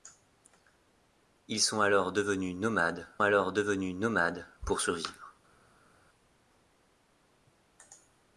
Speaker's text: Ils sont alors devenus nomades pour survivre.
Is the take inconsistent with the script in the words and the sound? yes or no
yes